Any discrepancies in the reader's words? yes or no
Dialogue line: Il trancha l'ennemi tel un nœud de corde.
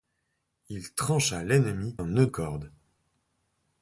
yes